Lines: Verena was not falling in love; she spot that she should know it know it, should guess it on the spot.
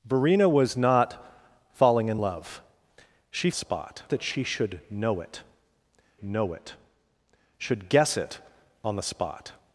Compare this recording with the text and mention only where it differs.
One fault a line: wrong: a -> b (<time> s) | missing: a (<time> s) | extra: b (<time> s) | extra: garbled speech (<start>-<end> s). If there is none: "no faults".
no faults